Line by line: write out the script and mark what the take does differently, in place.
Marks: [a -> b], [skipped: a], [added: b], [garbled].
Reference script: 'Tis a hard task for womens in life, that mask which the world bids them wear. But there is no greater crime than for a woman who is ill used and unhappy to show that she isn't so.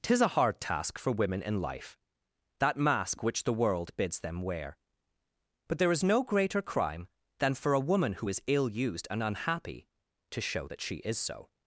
'Tis a hard task for [womens -> women] in life, that mask which the world bids them wear. But there is no greater crime than for a woman who is ill used and unhappy to show that she [isn't -> is] so.